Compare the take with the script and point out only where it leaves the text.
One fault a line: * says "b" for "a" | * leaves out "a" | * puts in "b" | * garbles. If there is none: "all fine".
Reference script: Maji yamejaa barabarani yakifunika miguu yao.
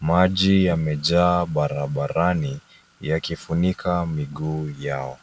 all fine